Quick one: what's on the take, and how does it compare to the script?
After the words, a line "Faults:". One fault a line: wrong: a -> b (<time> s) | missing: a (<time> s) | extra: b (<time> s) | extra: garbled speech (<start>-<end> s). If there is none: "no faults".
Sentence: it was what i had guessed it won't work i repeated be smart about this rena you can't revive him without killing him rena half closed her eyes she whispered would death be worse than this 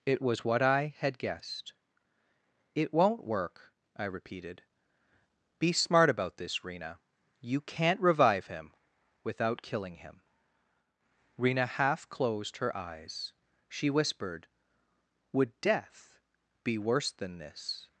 it was what i had guessed it won't work i repeated be smart about this rena you can't revive him without killing him rena half closed her eyes she whispered would death be worse than this
Faults:
no faults